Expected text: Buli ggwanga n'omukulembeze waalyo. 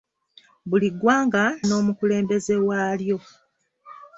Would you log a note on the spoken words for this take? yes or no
no